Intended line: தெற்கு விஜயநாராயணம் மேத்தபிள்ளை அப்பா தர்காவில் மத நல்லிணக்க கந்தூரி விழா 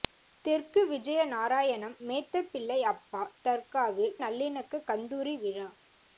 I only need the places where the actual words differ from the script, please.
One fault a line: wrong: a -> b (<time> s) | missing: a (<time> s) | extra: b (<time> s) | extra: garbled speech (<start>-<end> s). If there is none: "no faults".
missing: மத (4.1 s)